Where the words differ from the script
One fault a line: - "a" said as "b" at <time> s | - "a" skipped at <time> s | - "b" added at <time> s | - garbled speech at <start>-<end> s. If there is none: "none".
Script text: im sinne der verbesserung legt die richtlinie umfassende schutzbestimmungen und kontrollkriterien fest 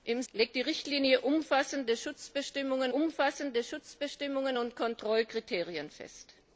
- "sinne der verbesserung" skipped at 0.2 s
- "umfassende schutzbestimmungen" added at 2.9 s